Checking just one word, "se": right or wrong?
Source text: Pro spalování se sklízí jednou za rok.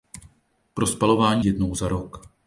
wrong